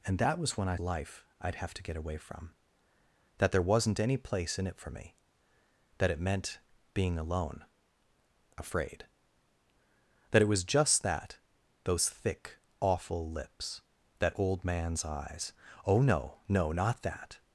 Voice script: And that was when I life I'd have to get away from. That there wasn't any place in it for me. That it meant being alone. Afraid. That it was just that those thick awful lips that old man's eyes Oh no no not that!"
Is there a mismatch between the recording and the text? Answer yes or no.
no